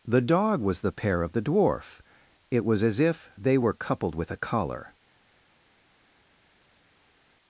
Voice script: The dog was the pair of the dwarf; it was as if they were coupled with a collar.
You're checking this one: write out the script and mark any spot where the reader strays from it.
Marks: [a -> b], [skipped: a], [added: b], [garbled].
The dog was the pair of the dwarf; it was as if they were coupled with a collar.